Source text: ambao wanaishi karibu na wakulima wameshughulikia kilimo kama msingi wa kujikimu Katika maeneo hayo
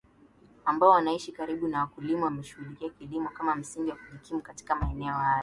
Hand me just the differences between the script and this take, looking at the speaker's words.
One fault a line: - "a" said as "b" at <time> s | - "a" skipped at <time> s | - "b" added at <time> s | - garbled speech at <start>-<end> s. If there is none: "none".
none